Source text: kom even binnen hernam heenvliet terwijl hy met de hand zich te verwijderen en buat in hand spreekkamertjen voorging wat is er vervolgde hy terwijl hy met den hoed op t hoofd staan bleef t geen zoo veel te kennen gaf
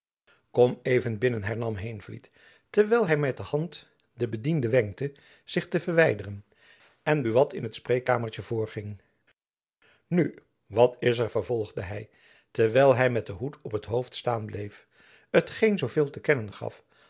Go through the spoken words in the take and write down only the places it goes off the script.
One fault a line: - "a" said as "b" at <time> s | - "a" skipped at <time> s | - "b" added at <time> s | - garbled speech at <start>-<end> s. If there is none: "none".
- "den bediende wenkte" added at 4.1 s
- "hand" said as "het" at 7.6 s
- "nu" added at 10.1 s